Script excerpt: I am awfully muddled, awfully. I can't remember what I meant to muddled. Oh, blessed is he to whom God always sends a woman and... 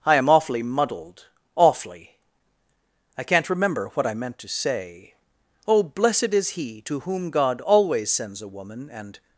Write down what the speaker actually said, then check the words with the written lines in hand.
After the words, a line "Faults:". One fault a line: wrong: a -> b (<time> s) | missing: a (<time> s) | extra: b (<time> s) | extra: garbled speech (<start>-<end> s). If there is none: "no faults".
I am awfully muddled, awfully. I can't remember what I meant to say. Oh, blessed is he to whom God always sends a woman and...
Faults:
wrong: muddled -> say (4.5 s)